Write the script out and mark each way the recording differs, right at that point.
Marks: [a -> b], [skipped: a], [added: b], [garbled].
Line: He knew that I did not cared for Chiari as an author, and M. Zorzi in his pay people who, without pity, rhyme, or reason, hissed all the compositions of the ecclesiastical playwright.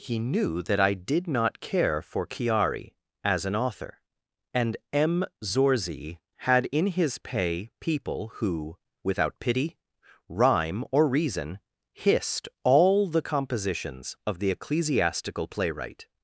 He knew that I did not [cared -> care] for Chiari as an author, and M. Zorzi [added: had] in his pay people who, without pity, rhyme, or reason, hissed all the compositions of the ecclesiastical playwright.